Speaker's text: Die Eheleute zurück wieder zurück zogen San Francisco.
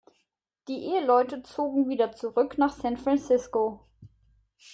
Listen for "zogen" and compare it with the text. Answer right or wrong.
wrong